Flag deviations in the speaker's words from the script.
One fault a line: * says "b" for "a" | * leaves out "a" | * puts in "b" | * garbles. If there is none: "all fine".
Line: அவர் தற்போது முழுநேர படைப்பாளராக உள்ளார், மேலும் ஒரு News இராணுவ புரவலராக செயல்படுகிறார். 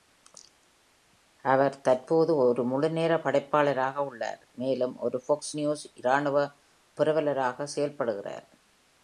* puts in "ஒரு"
* puts in "Fox"